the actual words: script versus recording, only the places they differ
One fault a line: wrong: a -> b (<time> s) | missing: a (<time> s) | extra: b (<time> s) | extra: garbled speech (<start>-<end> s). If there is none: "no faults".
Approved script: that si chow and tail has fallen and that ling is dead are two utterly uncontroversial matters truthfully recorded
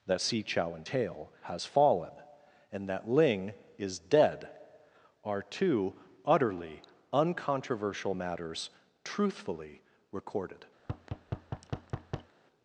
no faults